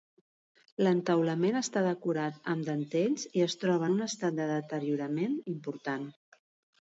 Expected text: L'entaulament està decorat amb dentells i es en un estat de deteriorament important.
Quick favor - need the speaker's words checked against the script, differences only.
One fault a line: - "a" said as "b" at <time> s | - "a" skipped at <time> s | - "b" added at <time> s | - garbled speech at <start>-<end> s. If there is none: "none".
- "troba" added at 3.6 s